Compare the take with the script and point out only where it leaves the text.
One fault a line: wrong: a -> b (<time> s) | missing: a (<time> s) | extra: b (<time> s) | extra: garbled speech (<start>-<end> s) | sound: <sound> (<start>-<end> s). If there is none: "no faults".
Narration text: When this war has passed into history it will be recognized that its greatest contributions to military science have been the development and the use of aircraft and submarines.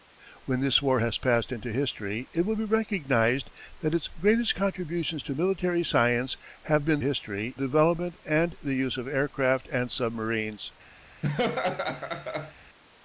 wrong: the -> history (7.0 s)
sound: laugh (11.2-12.5 s)